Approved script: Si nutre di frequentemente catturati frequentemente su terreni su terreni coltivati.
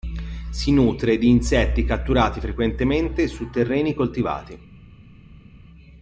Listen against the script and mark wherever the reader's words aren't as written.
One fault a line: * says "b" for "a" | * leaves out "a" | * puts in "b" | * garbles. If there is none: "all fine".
* says "insetti" for "frequentemente"
* leaves out "su terreni"